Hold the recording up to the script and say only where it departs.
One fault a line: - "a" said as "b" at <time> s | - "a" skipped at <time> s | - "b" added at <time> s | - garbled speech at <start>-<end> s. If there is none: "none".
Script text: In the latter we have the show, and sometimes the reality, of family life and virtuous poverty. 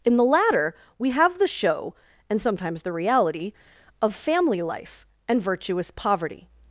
none